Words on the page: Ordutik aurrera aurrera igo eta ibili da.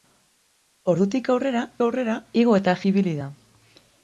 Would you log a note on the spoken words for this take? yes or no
no